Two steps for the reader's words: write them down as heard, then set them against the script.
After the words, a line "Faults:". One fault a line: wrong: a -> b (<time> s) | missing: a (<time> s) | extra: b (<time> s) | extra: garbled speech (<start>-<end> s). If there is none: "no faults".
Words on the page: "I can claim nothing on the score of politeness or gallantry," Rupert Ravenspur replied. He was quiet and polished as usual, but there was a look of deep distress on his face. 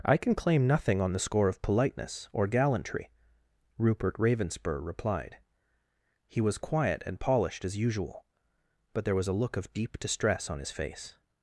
"I can claim nothing on the score of politeness or gallantry," Rupert Ravenspur replied. He was quiet and polished as usual, but there was a look of deep distress on his face.
Faults:
no faults